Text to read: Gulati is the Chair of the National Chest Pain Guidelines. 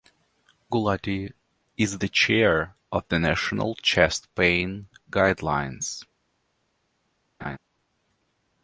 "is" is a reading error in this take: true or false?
false